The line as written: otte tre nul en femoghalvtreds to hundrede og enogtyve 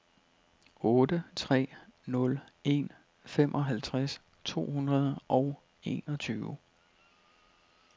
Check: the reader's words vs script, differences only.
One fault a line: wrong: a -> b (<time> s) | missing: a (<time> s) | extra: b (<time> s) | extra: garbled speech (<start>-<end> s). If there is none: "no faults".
no faults